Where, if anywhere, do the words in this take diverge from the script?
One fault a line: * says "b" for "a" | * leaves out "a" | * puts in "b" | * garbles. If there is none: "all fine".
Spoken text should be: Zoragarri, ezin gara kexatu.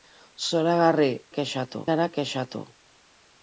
* says "kexatu" for "ezin"